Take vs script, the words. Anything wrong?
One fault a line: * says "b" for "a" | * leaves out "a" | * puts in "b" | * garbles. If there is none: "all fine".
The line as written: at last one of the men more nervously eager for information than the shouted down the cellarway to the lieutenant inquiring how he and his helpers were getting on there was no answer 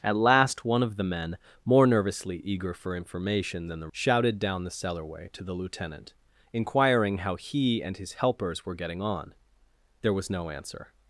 all fine